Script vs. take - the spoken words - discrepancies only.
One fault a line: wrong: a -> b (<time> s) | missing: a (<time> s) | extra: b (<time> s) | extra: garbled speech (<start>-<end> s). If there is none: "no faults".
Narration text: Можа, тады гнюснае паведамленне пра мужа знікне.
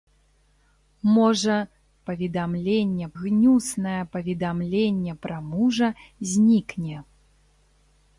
wrong: тады -> паведамленне (2.1 s)